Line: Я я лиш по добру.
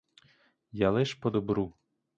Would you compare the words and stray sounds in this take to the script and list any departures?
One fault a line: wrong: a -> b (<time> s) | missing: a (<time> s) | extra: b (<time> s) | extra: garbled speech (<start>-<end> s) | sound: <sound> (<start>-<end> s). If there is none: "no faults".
missing: я (0.9 s)